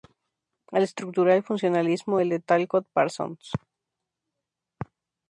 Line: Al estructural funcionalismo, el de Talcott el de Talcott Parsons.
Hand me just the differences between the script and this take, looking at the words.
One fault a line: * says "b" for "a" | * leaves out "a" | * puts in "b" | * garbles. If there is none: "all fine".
* leaves out "el de Talcott"